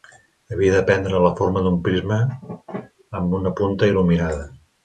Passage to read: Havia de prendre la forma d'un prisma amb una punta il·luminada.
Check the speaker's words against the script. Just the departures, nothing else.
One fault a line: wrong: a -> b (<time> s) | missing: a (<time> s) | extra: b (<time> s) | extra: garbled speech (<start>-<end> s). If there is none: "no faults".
no faults